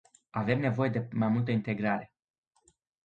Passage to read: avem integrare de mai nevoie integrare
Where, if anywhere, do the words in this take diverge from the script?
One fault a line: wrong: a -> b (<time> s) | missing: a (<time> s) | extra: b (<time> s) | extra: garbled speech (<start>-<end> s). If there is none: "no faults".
wrong: integrare -> nevoie (0.6 s)
wrong: nevoie -> multă (1.3 s)